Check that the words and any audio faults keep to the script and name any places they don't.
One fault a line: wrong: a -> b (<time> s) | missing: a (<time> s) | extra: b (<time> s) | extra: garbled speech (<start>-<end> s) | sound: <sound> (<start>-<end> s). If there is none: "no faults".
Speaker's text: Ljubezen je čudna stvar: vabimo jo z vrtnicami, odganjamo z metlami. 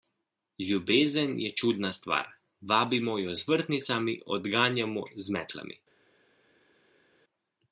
no faults